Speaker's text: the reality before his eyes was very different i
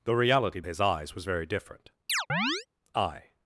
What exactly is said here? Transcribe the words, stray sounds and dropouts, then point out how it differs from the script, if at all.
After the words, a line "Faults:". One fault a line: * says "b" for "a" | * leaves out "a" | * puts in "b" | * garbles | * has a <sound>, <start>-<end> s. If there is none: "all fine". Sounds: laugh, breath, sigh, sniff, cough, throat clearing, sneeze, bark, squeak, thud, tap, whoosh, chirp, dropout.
the reality his eyes was very different i
Faults:
* leaves out "before"
* has a chirp, 2.1-2.7 s